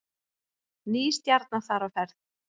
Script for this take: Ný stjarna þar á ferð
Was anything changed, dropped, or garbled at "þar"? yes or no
no